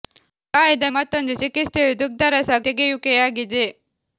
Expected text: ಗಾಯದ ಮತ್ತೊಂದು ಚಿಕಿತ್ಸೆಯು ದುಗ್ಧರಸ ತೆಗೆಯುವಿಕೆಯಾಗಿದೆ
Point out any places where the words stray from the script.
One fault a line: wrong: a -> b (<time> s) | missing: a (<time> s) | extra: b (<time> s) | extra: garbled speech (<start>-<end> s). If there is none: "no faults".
no faults